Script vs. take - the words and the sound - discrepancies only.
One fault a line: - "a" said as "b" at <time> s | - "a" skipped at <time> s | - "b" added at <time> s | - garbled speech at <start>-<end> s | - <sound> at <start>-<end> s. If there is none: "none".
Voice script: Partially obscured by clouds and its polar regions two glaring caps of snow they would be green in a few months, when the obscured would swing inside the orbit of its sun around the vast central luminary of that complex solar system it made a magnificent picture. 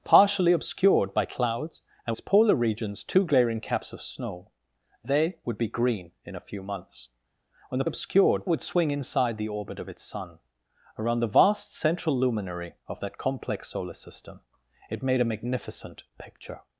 none